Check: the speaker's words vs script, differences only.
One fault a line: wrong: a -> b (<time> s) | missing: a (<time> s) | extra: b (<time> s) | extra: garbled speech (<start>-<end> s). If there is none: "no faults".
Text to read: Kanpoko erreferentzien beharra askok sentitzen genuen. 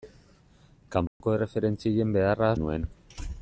missing: askok sentitzen (2.5 s)